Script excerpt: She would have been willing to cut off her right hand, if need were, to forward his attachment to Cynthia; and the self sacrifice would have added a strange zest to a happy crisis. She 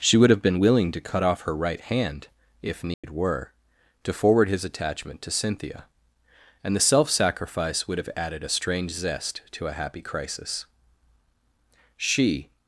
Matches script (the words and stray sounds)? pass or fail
fail